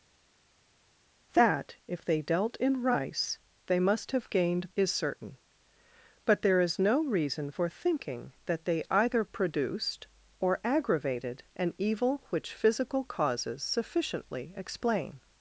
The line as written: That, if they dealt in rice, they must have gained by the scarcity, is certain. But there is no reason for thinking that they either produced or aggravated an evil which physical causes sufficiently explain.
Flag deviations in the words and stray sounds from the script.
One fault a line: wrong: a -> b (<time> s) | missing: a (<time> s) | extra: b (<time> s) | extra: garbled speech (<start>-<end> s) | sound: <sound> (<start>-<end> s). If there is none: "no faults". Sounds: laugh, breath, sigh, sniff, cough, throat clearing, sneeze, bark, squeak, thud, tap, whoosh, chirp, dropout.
missing: by the scarcity (4.7 s)